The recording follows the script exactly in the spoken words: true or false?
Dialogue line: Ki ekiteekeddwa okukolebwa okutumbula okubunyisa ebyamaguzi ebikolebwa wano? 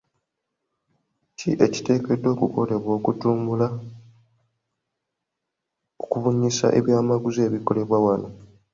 true